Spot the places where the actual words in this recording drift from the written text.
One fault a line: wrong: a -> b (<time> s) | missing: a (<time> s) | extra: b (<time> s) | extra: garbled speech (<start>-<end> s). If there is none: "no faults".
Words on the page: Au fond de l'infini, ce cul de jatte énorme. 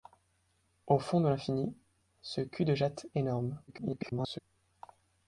extra: garbled speech (3.7-4.4 s)